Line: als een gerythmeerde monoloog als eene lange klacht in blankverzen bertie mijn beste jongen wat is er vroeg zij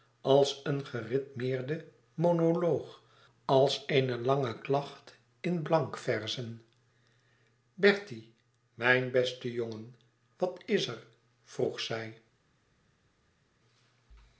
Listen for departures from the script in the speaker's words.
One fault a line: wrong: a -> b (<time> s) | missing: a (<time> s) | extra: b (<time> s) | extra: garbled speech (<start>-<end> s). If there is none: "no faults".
no faults